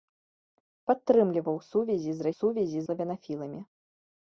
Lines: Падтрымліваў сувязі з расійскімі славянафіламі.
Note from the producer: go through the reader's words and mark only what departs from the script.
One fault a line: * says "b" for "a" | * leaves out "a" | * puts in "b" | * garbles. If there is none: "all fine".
* says "сувязі" for "расійскімі"